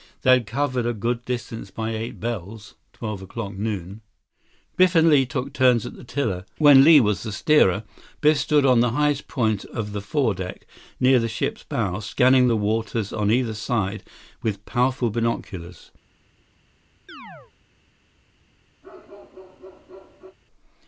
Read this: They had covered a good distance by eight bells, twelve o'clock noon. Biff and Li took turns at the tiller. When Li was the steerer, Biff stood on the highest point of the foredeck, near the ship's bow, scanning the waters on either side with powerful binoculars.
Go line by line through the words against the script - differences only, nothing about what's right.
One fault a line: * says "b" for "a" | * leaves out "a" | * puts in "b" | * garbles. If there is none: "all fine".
all fine